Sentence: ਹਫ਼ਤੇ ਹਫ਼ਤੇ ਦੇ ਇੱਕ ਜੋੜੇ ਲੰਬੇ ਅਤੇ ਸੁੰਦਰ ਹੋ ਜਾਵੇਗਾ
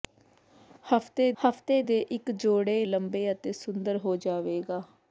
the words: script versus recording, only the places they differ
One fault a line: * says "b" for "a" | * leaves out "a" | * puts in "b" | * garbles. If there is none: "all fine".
all fine